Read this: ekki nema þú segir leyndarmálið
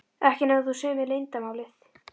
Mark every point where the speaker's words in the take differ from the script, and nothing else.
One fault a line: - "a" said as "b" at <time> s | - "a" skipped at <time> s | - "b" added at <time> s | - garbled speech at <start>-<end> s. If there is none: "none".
- "mér" added at 1.0 s